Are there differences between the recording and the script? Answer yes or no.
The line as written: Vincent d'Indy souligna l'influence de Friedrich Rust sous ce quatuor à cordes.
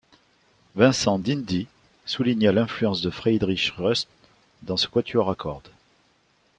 yes